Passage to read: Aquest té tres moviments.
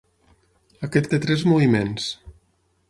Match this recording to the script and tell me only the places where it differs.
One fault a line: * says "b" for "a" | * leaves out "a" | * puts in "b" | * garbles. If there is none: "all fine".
all fine